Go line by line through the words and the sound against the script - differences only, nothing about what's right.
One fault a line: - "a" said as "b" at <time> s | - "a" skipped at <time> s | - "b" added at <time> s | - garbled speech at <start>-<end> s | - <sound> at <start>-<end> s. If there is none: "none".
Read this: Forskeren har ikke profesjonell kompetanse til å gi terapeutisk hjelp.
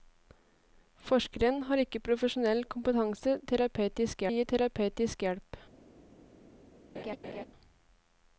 - "til" said as "terapeutisk" at 3.5 s
- laugh at 6.9-7.5 s